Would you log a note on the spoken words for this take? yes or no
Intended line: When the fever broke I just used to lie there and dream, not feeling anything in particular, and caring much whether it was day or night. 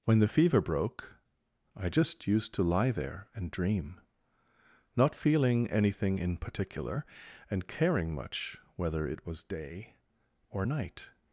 no